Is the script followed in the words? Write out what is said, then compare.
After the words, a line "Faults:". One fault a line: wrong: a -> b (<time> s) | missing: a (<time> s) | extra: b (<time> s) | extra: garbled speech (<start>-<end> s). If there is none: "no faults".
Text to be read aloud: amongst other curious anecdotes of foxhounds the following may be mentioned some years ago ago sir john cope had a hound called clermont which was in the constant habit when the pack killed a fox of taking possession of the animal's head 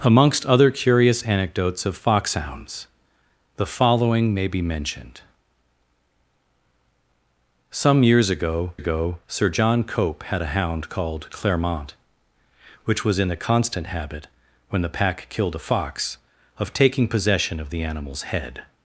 amongst other curious anecdotes of foxhounds the following may be mentioned some years ago ago sir john cope had a hound called clermont which was in the constant habit when the pack killed a fox of taking possession of the animal's head
Faults:
no faults